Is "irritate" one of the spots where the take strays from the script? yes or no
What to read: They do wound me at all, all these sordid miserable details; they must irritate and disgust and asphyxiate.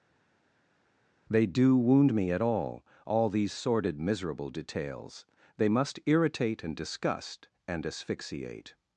no